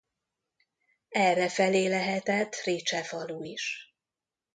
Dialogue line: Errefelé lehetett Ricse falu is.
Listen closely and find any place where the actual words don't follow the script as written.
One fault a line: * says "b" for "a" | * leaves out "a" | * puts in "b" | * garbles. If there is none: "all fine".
all fine